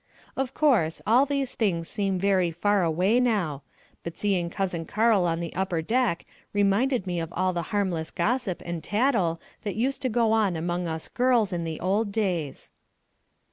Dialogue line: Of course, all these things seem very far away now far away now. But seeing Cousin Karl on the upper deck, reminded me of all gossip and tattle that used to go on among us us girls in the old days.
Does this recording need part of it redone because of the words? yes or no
yes